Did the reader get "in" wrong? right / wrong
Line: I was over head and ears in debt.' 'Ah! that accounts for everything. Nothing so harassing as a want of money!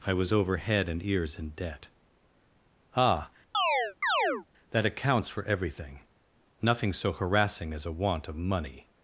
right